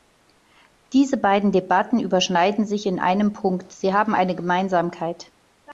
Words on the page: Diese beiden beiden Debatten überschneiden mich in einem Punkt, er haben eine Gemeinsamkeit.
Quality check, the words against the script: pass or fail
fail